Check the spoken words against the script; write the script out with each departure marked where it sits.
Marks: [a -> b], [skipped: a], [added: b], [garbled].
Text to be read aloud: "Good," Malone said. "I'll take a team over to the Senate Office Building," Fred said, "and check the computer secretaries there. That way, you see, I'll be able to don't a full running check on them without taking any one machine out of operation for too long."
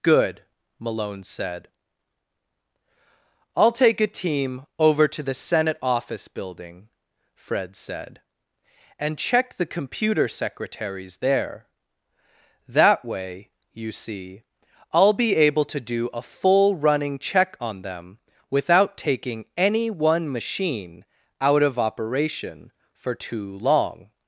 "Good," Malone said. "I'll take a team over to the Senate Office Building," Fred said, "and check the computer secretaries there. That way, you see, I'll be able to [don't -> do] a full running check on them without taking any one machine out of operation for too long."